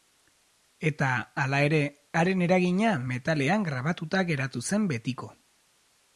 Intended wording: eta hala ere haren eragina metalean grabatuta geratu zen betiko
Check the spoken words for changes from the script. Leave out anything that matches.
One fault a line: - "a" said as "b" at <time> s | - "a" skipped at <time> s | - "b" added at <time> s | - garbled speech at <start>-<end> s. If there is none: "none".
none